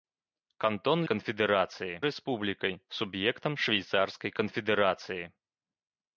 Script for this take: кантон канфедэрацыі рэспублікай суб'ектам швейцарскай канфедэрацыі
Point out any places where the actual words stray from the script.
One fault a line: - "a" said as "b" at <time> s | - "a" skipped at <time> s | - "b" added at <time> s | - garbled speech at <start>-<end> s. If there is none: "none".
none